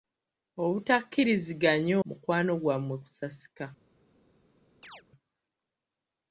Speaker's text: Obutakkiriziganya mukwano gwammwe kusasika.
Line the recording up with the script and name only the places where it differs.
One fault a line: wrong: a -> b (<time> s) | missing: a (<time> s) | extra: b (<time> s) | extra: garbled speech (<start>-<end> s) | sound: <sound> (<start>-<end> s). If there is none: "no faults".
sound: chirp (4.8-5.0 s)